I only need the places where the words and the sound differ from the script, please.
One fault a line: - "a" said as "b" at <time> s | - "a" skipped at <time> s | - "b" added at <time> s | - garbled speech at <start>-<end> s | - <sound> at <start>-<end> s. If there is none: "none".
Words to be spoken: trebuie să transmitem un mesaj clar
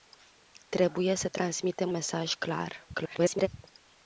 - "un" skipped at 1.9 s
- garbled speech at 2.9-3.5 s